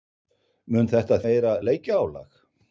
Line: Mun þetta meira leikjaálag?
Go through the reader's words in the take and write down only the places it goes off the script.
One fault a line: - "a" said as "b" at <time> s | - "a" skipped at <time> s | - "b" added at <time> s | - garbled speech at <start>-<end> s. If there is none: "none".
none